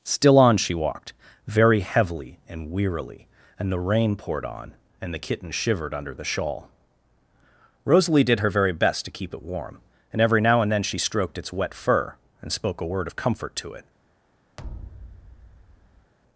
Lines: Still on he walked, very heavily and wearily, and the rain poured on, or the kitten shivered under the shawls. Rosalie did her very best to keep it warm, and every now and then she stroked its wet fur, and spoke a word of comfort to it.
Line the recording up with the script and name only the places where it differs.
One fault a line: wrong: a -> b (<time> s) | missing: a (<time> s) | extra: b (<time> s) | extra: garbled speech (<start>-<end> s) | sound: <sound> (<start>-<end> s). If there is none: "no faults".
wrong: he -> she (0.6 s)
wrong: or -> and (5.0 s)
wrong: shawls -> shawl (6.2 s)
sound: thud (14.6-16.1 s)